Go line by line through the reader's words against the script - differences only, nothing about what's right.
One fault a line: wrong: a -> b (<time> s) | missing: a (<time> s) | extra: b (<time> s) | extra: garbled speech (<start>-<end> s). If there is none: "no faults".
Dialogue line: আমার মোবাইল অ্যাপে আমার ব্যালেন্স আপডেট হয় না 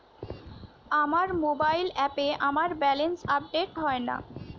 no faults